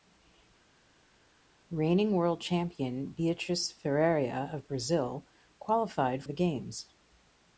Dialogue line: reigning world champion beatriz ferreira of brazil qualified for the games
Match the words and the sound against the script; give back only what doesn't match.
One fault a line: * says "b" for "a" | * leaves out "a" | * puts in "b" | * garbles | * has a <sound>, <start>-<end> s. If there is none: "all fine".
* leaves out "for"